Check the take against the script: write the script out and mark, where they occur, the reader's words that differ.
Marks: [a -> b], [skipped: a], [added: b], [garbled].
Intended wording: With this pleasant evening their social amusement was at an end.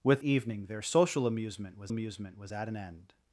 With [skipped: this pleasant] evening their social amusement was [added: amusement was] at an end.